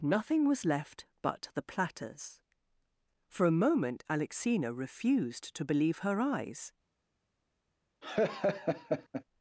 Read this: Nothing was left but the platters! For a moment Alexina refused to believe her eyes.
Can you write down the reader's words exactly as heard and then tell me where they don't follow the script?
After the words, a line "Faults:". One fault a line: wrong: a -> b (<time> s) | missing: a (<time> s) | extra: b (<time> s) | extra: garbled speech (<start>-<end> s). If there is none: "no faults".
Nothing was left but the platters! For a moment Alexina refused to believe her eyes.
Faults:
no faults